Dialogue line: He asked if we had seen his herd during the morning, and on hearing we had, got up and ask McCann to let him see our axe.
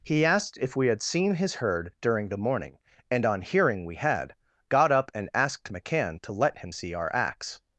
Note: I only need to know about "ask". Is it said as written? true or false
false